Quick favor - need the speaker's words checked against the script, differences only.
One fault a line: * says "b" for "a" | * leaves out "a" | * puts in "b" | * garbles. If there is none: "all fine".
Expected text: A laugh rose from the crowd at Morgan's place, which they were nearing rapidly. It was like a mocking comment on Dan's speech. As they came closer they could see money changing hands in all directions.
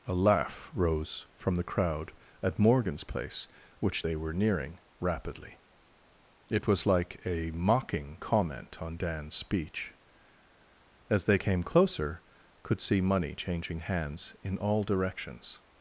* leaves out "they"